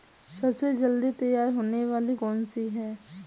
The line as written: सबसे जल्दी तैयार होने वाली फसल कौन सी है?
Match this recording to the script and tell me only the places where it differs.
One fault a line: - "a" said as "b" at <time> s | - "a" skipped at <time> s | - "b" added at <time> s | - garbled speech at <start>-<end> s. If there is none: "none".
- "फसल" skipped at 2.1 s